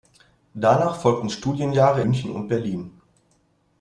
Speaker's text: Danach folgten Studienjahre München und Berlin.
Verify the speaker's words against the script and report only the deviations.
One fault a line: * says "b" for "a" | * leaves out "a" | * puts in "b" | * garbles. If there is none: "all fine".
all fine